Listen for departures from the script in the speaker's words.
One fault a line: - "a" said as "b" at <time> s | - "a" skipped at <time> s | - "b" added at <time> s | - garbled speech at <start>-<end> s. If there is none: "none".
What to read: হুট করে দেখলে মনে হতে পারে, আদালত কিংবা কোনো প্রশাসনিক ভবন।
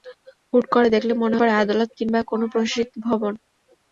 - "হতে" skipped at 1.4 s